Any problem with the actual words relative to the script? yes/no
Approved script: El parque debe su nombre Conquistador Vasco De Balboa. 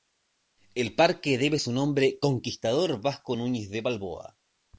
yes